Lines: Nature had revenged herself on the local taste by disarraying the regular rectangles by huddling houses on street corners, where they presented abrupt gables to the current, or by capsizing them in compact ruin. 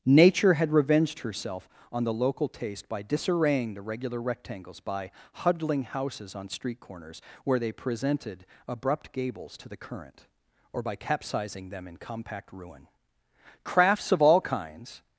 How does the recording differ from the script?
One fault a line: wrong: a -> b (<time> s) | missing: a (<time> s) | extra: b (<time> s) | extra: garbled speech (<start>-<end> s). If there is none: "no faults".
extra: Crafts of all kinds (13.6 s)